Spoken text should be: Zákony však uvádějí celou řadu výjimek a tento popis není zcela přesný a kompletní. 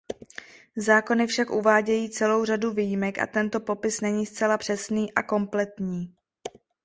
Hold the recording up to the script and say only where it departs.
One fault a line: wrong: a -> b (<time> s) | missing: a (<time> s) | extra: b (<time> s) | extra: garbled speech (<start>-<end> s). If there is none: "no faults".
no faults